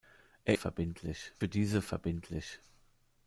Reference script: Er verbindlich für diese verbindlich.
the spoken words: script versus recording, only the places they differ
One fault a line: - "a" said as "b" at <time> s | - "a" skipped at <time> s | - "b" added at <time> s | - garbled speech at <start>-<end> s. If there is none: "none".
none